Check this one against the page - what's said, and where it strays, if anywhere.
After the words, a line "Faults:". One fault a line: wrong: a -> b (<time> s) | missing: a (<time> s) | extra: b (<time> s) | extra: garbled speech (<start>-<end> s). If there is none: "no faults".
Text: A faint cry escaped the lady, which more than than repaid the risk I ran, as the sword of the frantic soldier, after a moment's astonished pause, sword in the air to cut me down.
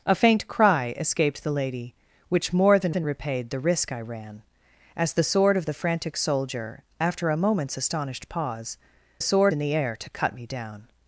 A faint cry escaped the lady, which more than than repaid the risk I ran, as the sword of the frantic soldier, after a moment's astonished pause, sword in the air to cut me down.
Faults:
no faults